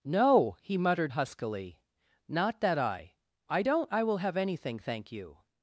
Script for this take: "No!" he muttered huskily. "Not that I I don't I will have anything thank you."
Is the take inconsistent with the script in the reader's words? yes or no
no